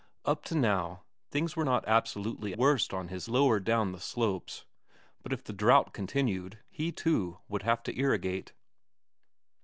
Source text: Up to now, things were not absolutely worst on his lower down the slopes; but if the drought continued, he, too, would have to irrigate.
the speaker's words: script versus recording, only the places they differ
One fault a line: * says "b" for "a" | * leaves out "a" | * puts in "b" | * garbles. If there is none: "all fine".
all fine